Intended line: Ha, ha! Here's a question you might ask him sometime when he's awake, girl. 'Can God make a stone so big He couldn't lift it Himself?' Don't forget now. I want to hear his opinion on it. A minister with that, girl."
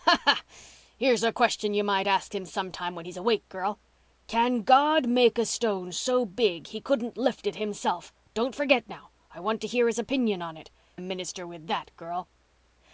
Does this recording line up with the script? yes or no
yes